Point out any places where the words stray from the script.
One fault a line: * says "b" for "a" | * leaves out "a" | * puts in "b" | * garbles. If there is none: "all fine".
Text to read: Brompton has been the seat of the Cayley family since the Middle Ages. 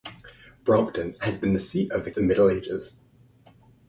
* leaves out "Cayley family since"